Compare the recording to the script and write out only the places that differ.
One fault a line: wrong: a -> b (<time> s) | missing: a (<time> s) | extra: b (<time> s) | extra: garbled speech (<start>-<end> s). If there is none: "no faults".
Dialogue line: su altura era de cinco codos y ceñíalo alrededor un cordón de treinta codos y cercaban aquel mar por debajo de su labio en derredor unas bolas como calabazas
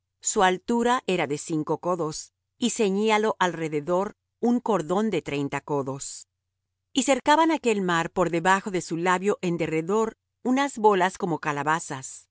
no faults